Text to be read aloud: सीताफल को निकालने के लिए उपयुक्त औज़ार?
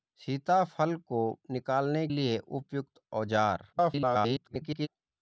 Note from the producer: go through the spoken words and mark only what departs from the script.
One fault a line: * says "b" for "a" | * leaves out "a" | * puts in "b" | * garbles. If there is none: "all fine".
* leaves out "के"
* garbles